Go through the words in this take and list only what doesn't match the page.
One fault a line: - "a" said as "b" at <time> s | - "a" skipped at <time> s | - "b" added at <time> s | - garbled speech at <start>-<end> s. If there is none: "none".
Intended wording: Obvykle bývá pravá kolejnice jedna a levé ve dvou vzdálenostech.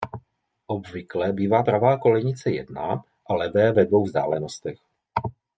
none